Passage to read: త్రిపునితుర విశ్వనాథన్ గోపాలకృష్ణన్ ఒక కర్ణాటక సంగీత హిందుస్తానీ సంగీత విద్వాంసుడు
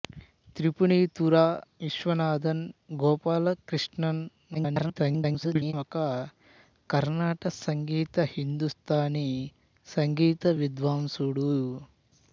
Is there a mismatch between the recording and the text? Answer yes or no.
yes